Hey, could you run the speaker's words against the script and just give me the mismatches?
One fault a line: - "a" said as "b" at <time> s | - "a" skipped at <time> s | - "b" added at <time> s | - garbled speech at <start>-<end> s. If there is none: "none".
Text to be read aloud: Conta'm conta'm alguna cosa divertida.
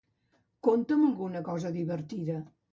- "conta'm" skipped at 1.1 s